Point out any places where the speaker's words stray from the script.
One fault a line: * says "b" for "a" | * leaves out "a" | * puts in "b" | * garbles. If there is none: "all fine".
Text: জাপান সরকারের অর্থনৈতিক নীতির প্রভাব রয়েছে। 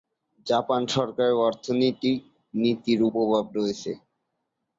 all fine